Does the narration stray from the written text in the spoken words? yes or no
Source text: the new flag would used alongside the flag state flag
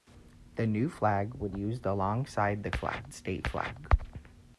no